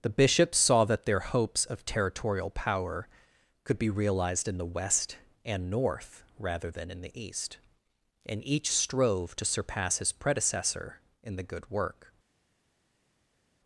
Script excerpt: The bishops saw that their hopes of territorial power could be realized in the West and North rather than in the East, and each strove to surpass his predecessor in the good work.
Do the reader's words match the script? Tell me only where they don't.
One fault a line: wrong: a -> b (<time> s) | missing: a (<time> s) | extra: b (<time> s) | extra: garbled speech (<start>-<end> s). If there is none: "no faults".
no faults